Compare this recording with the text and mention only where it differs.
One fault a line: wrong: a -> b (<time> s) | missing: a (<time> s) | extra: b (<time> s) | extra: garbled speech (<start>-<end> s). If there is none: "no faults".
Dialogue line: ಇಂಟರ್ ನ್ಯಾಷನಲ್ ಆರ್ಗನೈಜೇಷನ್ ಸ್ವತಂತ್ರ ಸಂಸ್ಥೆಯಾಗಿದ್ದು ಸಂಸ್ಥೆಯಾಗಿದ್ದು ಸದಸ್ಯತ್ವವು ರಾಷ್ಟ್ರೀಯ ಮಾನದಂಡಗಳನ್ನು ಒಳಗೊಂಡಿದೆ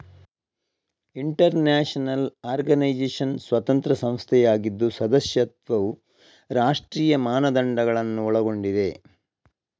missing: ಸಂಸ್ಥೆಯಾಗಿದ್ದು (4.9 s)